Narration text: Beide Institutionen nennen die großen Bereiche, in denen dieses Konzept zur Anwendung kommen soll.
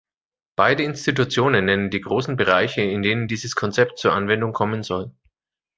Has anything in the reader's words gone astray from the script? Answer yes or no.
no